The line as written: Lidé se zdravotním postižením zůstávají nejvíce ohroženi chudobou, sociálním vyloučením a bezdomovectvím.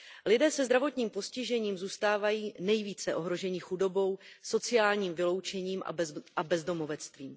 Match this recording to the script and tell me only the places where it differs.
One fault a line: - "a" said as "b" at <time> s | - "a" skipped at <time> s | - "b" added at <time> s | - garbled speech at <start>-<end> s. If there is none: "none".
none